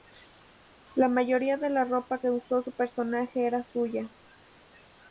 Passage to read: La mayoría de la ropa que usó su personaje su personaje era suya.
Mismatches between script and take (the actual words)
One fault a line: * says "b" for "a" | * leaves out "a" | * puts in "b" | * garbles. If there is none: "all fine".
* leaves out "su personaje"